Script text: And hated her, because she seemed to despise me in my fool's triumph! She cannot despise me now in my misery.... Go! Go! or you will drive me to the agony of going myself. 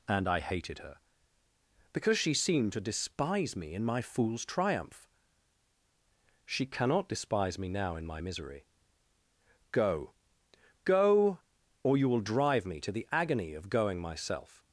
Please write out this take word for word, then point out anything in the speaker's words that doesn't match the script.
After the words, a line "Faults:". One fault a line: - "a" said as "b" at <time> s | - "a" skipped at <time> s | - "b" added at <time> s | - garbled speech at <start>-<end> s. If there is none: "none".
And I hated her, because she seemed to despise me in my fool's triumph! She cannot despise me now in my misery.... Go! Go! or you will drive me to the agony of going myself.
Faults:
- "I" added at 0.3 s